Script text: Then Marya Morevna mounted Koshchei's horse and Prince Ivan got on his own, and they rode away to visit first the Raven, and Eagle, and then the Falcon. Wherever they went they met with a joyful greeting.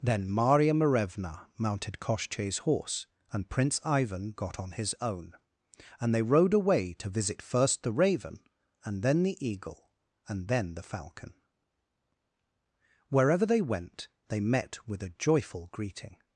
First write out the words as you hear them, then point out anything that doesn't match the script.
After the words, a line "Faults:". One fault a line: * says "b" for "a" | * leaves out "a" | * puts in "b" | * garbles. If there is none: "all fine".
Then Marya Morevna mounted Koshchei's horse and Prince Ivan got on his own, and they rode away to visit first the Raven, and then the Eagle, and then the Falcon. Wherever they went they met with a joyful greeting.
Faults:
* puts in "then the"